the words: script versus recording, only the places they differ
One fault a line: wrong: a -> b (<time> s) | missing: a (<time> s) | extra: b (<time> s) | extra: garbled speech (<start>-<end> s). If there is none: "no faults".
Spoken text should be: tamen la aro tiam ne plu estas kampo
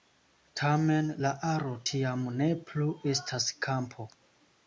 no faults